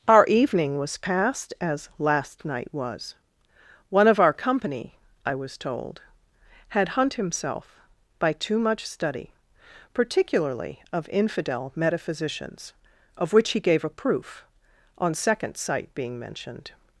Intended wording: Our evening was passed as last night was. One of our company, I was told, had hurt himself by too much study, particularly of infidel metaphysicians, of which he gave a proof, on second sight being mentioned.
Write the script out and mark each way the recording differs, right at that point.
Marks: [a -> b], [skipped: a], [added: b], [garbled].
Our evening was passed as last night was. One of our company, I was told, had [hurt -> hunt] himself by too much study, particularly of infidel metaphysicians, of which he gave a proof, on second sight being mentioned.